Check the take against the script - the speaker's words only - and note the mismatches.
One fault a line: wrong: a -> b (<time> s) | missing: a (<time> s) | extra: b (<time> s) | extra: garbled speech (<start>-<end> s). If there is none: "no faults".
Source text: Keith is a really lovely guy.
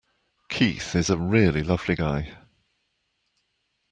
no faults